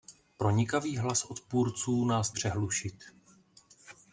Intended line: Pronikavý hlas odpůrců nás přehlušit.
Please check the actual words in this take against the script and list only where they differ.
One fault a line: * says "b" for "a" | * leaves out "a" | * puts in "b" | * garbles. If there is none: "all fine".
all fine